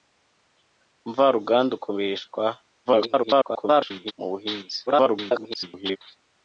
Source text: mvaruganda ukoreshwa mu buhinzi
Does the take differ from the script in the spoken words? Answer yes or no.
yes